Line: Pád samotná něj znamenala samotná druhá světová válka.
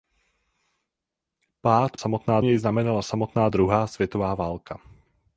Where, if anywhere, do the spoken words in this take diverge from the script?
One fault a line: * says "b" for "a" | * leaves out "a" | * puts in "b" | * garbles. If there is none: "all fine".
all fine